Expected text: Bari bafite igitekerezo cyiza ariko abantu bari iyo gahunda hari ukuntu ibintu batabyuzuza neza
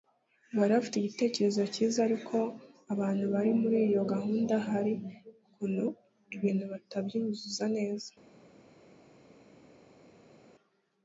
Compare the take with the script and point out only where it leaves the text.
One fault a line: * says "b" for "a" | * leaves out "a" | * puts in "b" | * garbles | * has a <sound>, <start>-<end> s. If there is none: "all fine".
* puts in "muri"